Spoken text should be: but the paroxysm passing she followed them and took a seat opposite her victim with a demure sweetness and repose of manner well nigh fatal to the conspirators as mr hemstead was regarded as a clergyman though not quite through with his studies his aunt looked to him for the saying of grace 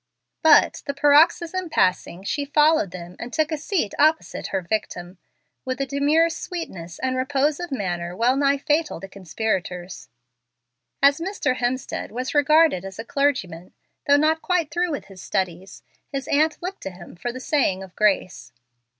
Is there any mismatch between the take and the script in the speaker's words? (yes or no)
yes